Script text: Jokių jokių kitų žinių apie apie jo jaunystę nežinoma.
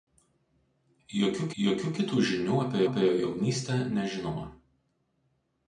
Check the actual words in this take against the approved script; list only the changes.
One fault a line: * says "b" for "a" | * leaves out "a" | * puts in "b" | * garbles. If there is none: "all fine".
all fine